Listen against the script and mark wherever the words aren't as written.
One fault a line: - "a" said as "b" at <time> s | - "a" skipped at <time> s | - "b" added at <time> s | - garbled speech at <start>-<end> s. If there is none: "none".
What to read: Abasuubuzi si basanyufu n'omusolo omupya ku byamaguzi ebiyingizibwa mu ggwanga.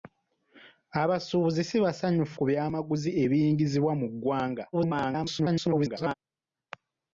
- "n'omusolo omupya" skipped at 2.4 s
- garbled speech at 4.7-6.1 s